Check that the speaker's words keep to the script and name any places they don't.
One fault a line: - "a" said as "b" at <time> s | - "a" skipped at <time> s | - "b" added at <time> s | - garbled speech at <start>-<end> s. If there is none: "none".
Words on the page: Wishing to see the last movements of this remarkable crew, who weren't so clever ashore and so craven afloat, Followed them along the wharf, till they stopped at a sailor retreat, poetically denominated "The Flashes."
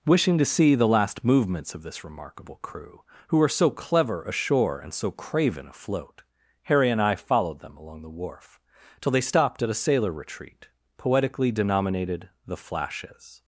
- "weren't" said as "were" at 3.4 s
- "Harry and I" added at 6.6 s